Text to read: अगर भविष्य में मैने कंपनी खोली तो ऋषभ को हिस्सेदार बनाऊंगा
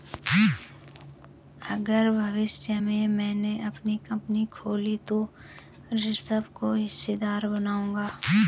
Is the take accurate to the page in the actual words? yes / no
no